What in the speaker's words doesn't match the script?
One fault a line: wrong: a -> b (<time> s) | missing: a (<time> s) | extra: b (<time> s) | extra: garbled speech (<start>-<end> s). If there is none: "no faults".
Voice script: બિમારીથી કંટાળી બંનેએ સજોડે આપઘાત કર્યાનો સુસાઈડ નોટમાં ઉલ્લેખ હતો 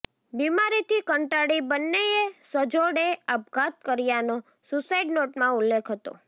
no faults